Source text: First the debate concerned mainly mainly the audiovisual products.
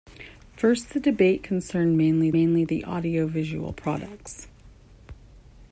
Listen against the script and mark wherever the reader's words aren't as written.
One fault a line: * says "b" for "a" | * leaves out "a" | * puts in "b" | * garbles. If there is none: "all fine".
all fine